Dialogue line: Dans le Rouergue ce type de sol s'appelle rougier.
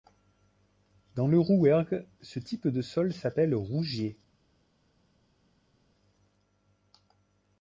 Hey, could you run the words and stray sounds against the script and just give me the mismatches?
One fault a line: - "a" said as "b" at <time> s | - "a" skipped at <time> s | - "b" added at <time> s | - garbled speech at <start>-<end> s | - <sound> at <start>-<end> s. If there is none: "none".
none